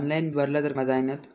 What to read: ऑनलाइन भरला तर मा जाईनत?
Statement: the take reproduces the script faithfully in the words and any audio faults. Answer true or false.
true